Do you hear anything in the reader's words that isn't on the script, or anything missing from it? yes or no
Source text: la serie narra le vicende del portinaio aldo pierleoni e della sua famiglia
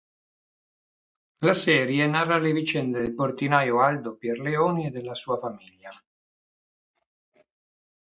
no